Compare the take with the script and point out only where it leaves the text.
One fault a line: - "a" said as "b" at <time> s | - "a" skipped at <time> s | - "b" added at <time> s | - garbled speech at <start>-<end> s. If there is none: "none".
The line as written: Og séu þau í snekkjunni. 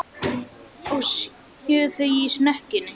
none